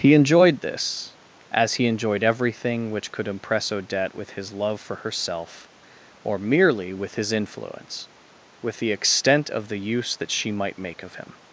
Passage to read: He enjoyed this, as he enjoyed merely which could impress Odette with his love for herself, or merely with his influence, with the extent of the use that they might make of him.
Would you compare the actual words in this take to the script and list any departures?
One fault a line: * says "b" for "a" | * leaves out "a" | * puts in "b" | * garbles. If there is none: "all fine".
* says "everything" for "merely"
* says "she" for "they"